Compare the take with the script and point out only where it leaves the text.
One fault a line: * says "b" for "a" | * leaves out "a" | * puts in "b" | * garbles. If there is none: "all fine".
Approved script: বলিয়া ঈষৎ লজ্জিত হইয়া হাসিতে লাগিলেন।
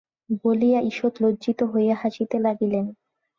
all fine